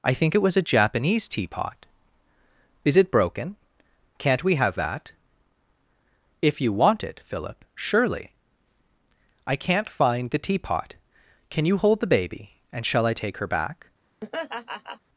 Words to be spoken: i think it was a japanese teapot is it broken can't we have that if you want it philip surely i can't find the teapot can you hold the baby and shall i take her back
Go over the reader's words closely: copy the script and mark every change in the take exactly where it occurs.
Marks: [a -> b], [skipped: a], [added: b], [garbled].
i think it was a japanese teapot is it broken can't we have that if you want it philip surely i can't find the teapot can you hold the baby and shall i take her back